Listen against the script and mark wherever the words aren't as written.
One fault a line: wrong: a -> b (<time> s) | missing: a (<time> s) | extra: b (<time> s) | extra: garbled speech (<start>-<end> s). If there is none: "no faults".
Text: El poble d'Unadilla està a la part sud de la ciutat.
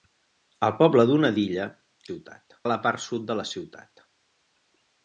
wrong: està -> ciutat (2.1 s)